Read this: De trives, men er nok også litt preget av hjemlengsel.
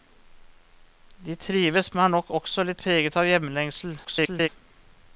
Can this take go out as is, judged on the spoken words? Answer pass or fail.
fail